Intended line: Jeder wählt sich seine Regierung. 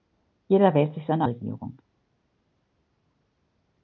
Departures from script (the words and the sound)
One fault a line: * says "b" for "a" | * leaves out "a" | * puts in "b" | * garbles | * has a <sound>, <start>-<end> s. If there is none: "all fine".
all fine